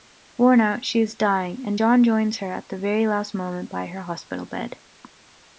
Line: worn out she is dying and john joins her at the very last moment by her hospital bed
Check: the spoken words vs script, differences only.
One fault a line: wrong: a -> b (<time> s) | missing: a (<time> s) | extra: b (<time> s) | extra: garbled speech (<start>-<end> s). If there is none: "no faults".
no faults